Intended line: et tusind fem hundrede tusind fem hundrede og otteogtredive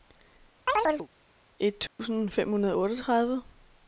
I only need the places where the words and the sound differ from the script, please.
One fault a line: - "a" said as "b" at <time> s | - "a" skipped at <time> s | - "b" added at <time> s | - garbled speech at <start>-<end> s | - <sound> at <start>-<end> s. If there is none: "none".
- chirp at 0.7-1.1 s
- dropout at 1.9-2.0 s
- "tusind fem hundrede" skipped at 2.7 s